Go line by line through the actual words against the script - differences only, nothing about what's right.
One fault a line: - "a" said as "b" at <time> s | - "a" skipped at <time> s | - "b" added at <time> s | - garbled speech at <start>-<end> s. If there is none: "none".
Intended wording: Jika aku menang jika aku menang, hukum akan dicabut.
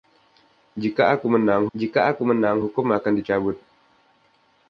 none